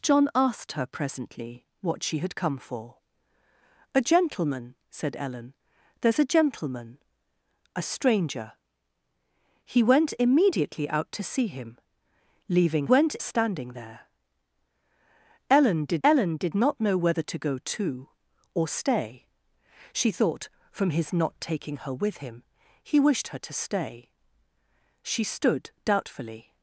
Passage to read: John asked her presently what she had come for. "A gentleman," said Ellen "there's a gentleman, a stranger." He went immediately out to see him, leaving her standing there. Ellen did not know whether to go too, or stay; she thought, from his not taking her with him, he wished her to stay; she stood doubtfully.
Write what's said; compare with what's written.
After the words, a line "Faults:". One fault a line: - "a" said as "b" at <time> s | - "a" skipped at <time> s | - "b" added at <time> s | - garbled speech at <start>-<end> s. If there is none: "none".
John asked her presently what she had come for. "A gentleman," said Ellen "there's a gentleman, a stranger." He went immediately out to see him, leaving went standing there. Ellen did ellen did not know whether to go too, or stay; she thought, from his not taking her with him, he wished her to stay; she stood doubtfully.
Faults:
- "her" said as "went" at 12.9 s
- "ellen did" added at 16.0 s